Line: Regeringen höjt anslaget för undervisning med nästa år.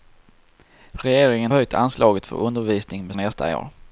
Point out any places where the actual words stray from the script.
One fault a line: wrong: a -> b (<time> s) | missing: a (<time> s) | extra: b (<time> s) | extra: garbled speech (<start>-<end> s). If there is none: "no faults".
no faults